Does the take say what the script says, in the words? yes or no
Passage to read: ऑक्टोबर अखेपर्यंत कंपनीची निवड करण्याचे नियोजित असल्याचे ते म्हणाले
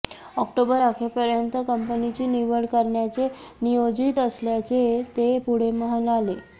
no